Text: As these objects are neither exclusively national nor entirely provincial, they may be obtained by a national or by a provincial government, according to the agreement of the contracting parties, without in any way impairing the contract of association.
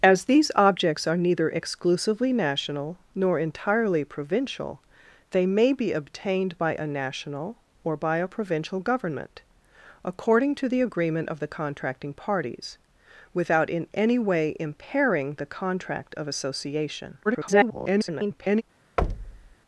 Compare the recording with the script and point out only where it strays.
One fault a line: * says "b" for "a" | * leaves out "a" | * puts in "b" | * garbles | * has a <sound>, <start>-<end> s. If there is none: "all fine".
* garbles
* has a thud, 19.0-19.5 s